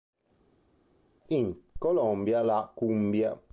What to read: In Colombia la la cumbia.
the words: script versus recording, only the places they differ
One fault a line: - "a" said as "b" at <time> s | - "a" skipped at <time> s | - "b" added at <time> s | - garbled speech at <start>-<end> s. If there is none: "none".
- "la" skipped at 2.7 s